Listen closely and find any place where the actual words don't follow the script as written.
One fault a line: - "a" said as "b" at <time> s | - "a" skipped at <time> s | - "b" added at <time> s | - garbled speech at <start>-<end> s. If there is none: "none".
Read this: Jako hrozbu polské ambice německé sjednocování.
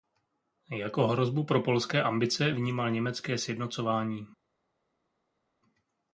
- "pro" added at 1.4 s
- "vnímal" added at 2.5 s